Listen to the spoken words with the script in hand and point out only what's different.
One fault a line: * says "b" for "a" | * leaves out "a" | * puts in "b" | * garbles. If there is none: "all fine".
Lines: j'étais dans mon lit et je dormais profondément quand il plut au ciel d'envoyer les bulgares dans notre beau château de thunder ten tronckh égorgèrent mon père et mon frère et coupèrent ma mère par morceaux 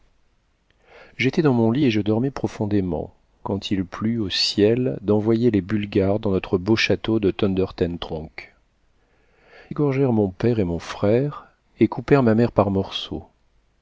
all fine